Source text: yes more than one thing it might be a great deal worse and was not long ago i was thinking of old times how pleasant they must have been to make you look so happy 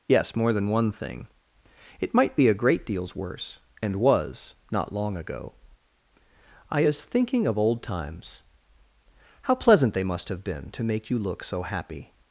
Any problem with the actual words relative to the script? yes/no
yes